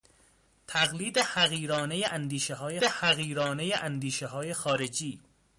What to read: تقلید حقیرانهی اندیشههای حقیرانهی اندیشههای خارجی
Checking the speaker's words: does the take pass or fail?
pass